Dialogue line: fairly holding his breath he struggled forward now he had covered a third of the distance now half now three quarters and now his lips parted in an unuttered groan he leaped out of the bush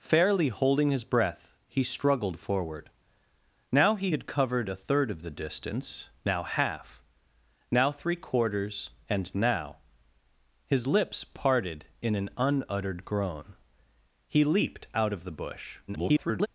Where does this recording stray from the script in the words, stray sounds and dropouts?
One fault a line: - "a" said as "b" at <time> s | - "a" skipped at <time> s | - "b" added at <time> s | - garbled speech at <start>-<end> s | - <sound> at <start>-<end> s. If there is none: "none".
- garbled speech at 15.9-16.5 s